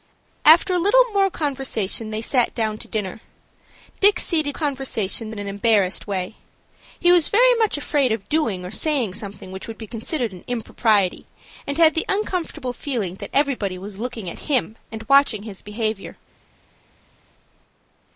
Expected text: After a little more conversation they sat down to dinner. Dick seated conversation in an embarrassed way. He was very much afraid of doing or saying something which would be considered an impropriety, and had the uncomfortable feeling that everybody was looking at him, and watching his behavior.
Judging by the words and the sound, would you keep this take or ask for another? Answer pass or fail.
pass